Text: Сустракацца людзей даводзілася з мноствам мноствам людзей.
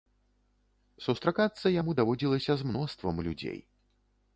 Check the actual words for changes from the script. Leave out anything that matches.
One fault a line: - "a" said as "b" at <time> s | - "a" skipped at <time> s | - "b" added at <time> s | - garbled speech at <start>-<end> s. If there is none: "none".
- "людзей" said as "яму" at 1.8 s
- "мноствам" skipped at 3.2 s